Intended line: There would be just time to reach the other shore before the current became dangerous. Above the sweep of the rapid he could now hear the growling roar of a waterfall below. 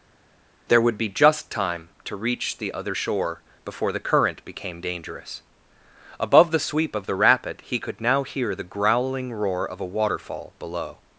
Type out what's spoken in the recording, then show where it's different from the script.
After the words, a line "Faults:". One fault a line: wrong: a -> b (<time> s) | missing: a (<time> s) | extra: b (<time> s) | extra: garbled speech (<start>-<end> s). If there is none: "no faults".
There would be just time to reach the other shore before the current became dangerous. Above the sweep of the rapid he could now hear the growling roar of a waterfall below.
Faults:
no faults